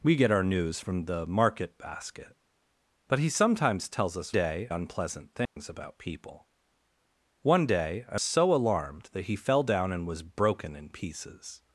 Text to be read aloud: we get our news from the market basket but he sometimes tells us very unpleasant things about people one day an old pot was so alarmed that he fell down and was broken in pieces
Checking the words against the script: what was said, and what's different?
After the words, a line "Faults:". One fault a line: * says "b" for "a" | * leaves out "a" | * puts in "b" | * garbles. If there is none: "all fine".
we get our news from the market basket but he sometimes tells us day unpleasant things about people one day an so alarmed that he fell down and was broken in pieces
Faults:
* says "day" for "very"
* leaves out "old pot was"